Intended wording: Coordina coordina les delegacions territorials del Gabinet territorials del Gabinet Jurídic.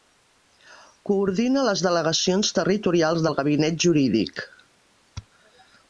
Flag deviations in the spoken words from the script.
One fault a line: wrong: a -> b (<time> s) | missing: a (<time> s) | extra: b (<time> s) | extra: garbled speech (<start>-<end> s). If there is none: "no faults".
missing: coordina (1.6 s)
missing: territorials del Gabinet (3.8 s)